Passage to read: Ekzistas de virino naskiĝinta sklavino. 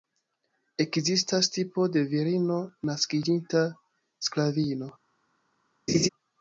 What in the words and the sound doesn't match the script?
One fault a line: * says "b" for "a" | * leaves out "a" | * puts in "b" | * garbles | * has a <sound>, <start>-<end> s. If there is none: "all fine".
* puts in "tipo"
* has a laugh, 5.9-6.1 s